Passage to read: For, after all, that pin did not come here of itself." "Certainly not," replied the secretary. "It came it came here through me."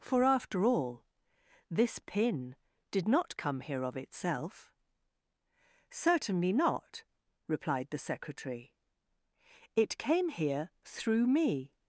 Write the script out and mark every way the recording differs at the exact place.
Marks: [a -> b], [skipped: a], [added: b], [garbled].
For, after all, [that -> this] pin did not come here of itself." "Certainly not," replied the secretary. "It came [skipped: it came] here through me."